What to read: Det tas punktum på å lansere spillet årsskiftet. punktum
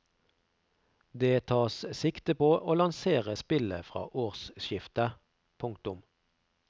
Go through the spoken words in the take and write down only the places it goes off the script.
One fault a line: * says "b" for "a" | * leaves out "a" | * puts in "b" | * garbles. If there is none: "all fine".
* says "sikte" for "punktum"
* puts in "fra"